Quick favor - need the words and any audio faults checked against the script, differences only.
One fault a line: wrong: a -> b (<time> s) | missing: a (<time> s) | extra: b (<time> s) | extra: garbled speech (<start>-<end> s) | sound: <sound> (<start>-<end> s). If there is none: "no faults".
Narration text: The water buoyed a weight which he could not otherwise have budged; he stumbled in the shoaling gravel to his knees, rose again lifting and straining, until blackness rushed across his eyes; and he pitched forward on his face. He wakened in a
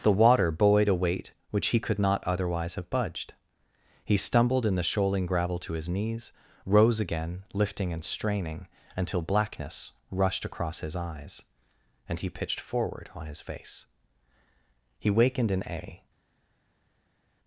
no faults